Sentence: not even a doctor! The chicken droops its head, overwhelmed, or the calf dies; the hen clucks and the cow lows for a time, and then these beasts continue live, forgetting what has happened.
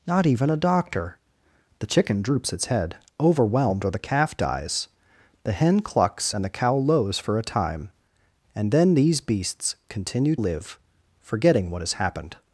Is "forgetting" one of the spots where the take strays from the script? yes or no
no